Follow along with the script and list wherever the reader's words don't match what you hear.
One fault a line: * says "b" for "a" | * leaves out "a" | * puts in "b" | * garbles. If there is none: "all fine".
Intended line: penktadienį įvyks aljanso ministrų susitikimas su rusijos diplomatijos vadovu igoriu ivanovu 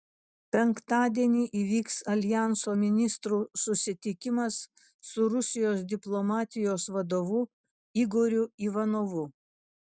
all fine